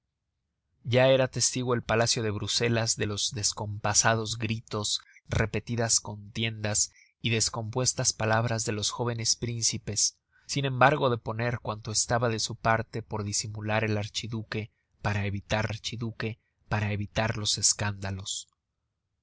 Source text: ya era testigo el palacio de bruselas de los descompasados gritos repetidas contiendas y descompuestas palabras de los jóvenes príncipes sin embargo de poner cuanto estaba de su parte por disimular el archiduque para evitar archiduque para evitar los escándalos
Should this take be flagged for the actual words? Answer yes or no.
no